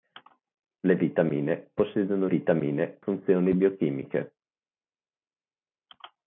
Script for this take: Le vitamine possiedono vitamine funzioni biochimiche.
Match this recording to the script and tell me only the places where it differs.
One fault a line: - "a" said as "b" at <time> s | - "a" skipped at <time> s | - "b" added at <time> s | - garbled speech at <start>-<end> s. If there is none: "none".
none